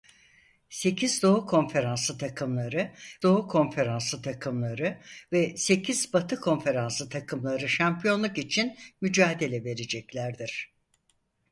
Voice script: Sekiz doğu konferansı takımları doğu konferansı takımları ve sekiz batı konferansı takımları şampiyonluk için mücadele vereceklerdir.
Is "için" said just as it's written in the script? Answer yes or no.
yes